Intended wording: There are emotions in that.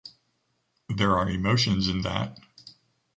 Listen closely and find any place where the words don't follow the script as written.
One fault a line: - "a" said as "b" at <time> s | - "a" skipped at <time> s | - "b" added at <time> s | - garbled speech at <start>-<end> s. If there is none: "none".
none